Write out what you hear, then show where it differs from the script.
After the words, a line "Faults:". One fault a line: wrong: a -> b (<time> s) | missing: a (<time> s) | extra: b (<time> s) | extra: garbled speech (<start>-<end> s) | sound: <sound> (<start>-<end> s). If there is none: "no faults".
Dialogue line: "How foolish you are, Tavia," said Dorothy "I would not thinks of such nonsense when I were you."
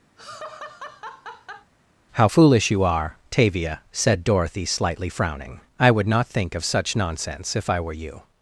"How foolish you are, Tavia," said Dorothy slightly frowning, "I would not think of such nonsense if I were you."
Faults:
sound: laugh (0.2-1.7 s)
extra: slightly frowning (4.6 s)
wrong: thinks -> think (6.3 s)
wrong: when -> if (7.5 s)